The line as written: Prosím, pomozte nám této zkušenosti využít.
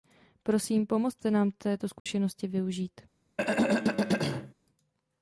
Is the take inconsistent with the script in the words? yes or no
no